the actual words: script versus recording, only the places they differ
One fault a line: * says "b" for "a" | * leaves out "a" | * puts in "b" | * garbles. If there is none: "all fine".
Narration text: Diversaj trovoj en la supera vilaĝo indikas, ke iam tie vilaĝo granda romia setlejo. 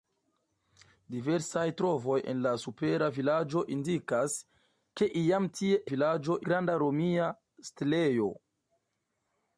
all fine